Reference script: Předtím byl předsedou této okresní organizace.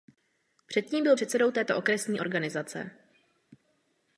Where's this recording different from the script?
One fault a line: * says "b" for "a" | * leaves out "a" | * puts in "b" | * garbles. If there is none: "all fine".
all fine